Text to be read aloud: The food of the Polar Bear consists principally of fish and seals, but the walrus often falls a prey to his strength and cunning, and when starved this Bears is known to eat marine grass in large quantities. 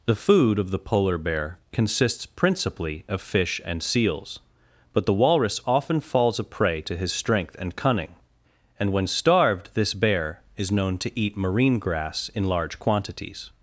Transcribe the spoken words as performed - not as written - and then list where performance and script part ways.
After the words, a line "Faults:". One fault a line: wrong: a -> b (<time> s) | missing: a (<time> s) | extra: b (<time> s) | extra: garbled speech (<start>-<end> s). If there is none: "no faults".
The food of the Polar Bear consists principally of fish and seals, but the walrus often falls a prey to his strength and cunning, and when starved this Bear is known to eat marine grass in large quantities.
Faults:
wrong: Bears -> Bear (9.9 s)